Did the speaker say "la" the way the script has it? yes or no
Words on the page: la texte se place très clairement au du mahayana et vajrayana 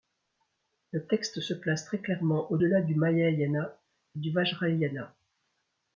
no